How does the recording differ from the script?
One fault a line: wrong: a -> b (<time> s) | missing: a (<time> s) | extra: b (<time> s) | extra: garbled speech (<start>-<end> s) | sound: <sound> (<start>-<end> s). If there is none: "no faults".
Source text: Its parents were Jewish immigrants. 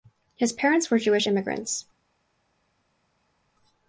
wrong: Its -> His (0.3 s)